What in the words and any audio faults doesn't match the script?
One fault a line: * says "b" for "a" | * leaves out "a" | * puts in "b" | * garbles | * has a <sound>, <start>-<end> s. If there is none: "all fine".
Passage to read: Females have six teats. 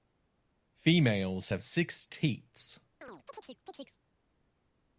* has a chirp, 3.0-4.0 s